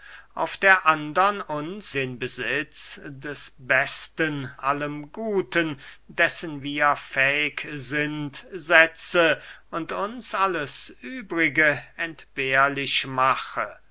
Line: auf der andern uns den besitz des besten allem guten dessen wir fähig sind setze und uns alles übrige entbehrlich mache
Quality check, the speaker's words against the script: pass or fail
pass